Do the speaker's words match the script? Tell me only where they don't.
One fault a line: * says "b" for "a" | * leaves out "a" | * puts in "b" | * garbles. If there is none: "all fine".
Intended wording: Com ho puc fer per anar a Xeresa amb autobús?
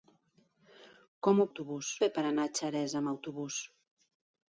* says "autobús" for "puc"